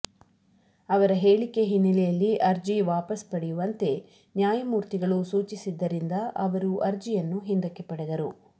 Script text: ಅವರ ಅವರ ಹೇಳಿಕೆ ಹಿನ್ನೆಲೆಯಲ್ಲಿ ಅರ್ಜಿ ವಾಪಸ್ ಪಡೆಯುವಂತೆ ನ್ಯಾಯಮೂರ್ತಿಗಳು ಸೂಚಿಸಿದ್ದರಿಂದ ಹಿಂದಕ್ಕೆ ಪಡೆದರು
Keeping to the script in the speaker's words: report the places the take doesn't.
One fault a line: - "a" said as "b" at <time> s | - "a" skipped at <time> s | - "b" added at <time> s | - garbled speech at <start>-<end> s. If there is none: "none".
- "ಅವರ" skipped at 1.1 s
- "ಅವರು ಅರ್ಜಿಯನ್ನು" added at 6.5 s